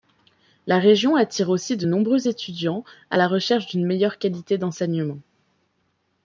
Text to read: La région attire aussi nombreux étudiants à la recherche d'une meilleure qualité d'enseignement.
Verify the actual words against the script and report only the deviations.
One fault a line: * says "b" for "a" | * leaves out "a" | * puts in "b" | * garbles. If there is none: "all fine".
* puts in "de"